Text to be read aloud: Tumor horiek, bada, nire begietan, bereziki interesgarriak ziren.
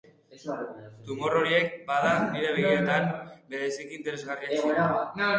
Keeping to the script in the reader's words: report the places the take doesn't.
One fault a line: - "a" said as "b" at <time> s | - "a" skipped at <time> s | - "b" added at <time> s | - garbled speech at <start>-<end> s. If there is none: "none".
none